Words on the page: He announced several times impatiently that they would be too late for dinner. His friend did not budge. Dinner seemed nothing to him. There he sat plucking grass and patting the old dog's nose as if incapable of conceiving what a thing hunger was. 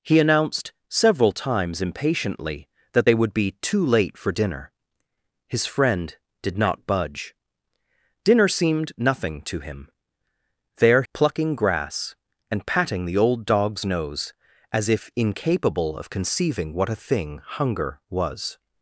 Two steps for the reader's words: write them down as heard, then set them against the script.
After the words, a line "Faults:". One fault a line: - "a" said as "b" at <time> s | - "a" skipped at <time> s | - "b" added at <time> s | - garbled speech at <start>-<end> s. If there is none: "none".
He announced several times impatiently that they would be too late for dinner. His friend did not budge. Dinner seemed nothing to him. There plucking grass and patting the old dog's nose as if incapable of conceiving what a thing hunger was.
Faults:
- "he sat" skipped at 11.0 s